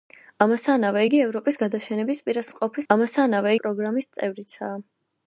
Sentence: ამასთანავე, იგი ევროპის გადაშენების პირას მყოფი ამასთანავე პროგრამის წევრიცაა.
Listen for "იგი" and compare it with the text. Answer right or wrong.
right